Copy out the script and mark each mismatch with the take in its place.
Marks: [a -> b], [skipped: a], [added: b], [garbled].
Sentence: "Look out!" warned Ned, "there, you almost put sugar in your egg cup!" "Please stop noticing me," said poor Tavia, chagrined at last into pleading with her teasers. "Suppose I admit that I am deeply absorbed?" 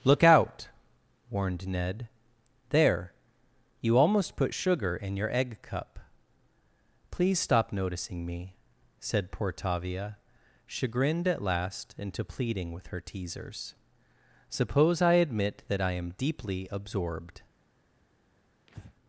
"Look out!" warned Ned, "there, you almost put sugar in your egg cup!" "Please stop noticing me," said poor Tavia, chagrined at last into pleading with her teasers. "Suppose I admit that I am deeply absorbed?"